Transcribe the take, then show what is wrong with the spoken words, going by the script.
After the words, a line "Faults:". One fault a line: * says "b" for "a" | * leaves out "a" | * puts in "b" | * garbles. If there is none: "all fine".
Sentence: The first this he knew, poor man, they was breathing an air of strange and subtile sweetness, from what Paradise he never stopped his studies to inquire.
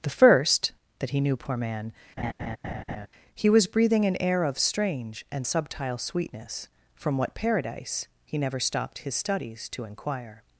The first that he knew, poor man, he was breathing an air of strange and subtile sweetness, from what Paradise he never stopped his studies to inquire.
Faults:
* says "that" for "this"
* says "he" for "they"